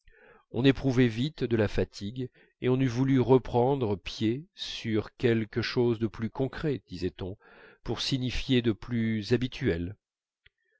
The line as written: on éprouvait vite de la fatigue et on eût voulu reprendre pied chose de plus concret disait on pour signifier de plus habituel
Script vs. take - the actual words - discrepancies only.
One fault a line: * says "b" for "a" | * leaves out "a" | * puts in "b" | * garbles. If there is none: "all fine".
* puts in "sur quelque"